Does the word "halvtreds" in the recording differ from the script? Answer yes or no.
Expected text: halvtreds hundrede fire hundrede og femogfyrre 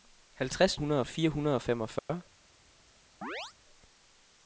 no